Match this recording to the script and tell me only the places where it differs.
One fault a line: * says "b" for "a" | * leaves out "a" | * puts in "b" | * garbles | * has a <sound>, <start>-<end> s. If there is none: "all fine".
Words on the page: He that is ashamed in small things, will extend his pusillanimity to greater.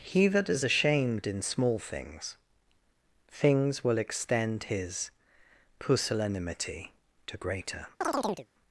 * puts in "things"
* has a chirp, 8.0-8.5 s